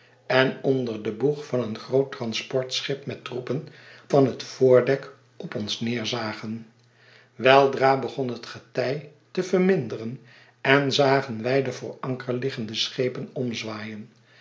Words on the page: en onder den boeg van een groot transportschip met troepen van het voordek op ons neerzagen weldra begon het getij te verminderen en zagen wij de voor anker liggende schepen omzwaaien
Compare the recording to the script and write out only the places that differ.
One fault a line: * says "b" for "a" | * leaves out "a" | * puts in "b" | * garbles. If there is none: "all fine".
all fine